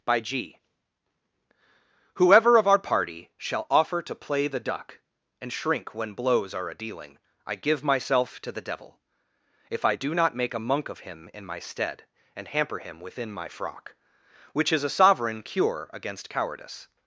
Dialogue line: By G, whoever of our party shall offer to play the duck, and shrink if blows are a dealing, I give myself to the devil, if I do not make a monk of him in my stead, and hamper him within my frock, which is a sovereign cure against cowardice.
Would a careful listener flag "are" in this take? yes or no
no